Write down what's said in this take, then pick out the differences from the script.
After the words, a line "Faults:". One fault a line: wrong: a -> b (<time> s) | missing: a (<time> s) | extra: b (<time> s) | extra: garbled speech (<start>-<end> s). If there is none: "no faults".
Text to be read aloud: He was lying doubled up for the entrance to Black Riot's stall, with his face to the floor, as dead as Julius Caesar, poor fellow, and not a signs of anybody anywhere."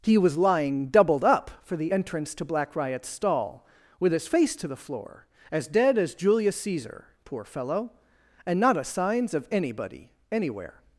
He was lying doubled up for the entrance to Black Riot's stall, with his face to the floor, as dead as Julius Caesar, poor fellow, and not a signs of anybody anywhere."
Faults:
no faults